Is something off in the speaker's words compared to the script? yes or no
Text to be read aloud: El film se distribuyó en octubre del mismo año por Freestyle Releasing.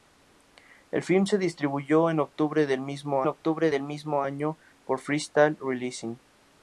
yes